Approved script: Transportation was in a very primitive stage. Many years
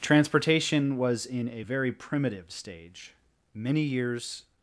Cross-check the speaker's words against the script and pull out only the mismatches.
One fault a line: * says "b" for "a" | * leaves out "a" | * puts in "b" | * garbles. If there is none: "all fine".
all fine